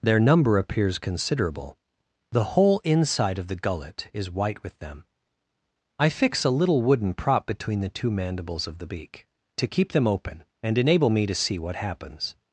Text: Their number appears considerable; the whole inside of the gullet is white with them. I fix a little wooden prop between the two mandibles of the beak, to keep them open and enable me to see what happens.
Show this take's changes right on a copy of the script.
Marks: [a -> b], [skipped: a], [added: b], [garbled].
Their number appears considerable; the whole inside of the gullet is white with them. I fix a little wooden prop between the two mandibles of the beak, to keep them open and enable me to see what happens.